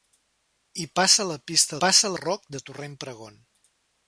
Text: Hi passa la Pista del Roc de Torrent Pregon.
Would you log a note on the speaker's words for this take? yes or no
yes